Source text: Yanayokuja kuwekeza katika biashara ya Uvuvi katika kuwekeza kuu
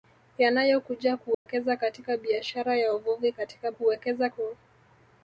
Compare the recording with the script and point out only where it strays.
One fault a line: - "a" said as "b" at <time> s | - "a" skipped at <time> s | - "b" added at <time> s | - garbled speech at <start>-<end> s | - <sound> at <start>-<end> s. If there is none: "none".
- dropout at 1.3-1.5 s